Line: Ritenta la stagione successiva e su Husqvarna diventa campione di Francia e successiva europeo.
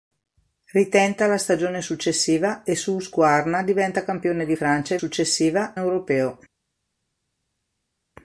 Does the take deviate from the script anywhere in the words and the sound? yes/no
no